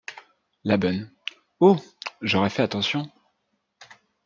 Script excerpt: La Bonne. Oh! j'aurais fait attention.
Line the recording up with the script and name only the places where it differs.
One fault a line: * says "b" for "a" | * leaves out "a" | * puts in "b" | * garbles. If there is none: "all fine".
all fine